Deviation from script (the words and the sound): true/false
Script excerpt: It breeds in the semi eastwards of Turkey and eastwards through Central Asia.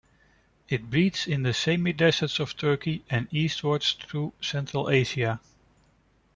true